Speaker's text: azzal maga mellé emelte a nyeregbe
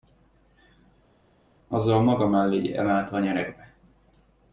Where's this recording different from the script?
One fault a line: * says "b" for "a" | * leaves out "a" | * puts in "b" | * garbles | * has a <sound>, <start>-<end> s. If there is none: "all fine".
all fine